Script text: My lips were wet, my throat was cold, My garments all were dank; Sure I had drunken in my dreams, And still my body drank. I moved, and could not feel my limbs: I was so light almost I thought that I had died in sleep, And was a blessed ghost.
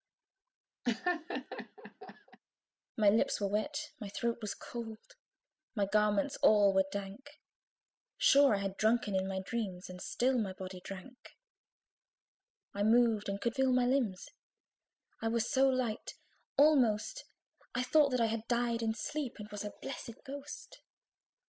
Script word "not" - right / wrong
wrong